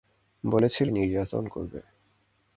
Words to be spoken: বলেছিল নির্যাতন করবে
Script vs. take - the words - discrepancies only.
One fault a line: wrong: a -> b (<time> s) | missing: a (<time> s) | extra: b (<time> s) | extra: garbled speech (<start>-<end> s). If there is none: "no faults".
no faults